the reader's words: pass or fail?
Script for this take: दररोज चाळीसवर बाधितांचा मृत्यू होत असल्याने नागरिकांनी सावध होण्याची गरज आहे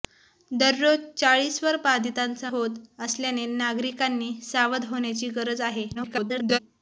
fail